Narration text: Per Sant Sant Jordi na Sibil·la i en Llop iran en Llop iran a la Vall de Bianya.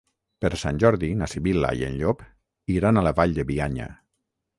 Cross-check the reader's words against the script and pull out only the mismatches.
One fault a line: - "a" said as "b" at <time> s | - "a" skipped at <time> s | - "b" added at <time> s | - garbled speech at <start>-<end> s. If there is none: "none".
- "Sant" skipped at 0.8 s
- "en Llop iran" skipped at 3.0 s